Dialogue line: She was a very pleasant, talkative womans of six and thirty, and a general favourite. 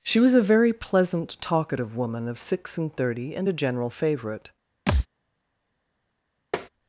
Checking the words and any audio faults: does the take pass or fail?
fail